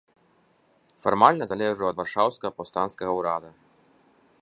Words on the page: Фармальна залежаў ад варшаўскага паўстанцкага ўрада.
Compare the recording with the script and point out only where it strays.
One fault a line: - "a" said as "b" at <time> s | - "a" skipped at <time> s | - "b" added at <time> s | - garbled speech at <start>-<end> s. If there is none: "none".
none